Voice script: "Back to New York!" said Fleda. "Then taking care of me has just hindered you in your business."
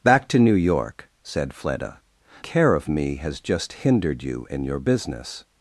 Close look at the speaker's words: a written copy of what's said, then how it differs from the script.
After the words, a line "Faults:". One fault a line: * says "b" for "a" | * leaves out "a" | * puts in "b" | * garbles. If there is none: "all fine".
"Back to New York!" said Fleda. "Care of me has just hindered you in your business."
Faults:
* leaves out "Then taking"